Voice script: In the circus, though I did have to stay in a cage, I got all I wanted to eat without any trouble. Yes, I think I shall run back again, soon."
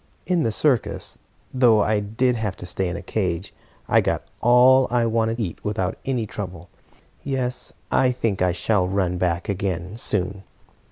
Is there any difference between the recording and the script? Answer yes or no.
yes